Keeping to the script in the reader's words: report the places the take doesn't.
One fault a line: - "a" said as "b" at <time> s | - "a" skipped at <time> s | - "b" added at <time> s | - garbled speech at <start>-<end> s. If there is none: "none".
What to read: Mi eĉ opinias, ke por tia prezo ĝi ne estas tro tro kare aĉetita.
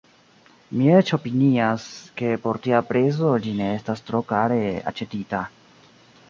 - "tro" skipped at 4.3 s